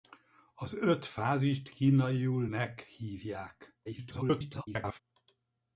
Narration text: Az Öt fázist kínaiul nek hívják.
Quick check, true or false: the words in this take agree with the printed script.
false